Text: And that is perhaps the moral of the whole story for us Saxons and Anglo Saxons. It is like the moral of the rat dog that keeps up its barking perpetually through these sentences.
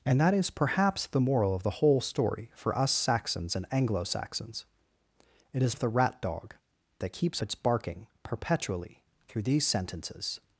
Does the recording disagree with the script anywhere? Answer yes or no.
yes